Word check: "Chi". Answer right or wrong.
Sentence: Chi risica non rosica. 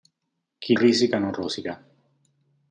right